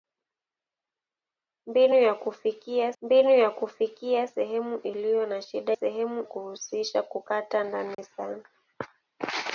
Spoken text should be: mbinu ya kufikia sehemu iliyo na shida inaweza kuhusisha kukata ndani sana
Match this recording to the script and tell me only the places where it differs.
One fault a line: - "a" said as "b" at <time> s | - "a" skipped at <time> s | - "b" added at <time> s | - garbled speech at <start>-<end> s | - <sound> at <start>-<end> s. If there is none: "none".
- "mbinu ya kufikia" added at 3.0 s
- "inaweza" said as "sehemu" at 5.7 s
- dropout at 7.9-8.0 s